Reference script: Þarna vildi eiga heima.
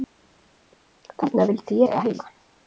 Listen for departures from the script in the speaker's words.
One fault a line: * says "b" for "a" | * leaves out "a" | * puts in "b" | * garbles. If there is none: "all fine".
all fine